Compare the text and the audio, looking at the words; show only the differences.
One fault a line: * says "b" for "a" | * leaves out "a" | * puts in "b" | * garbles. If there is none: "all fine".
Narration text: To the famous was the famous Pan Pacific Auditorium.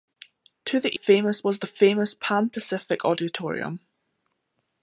all fine